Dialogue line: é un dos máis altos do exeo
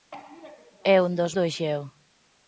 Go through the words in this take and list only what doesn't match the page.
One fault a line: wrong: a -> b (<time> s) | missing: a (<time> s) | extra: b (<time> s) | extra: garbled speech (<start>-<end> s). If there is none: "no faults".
missing: máis altos (1.3 s)